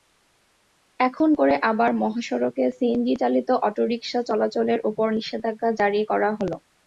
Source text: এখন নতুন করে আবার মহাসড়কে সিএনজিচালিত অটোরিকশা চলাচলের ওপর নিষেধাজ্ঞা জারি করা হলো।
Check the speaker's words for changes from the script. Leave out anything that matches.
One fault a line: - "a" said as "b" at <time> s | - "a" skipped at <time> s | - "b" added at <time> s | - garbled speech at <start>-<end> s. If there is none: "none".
- "নতুন" skipped at 1.3 s